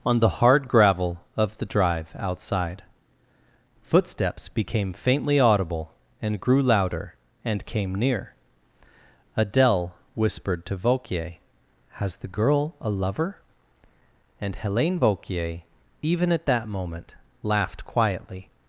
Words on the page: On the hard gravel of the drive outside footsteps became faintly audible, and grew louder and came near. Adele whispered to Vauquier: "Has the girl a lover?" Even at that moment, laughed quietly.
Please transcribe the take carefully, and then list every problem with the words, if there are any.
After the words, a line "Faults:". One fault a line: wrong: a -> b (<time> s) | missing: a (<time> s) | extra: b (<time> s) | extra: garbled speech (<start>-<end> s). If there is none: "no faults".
On the hard gravel of the drive outside footsteps became faintly audible, and grew louder and came near. Adele whispered to Vauquier: "Has the girl a lover?" And Helene Vauquier, even at that moment, laughed quietly.
Faults:
extra: And Helene Vauquier (14.4 s)